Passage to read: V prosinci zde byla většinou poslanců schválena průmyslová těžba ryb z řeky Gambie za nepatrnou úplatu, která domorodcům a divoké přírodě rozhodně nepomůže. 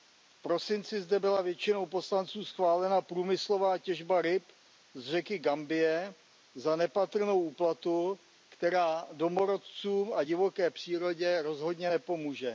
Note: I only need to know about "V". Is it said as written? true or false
true